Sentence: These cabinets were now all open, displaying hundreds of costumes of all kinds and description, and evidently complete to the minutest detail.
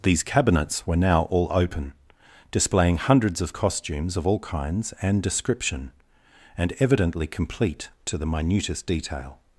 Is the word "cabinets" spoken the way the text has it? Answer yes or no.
yes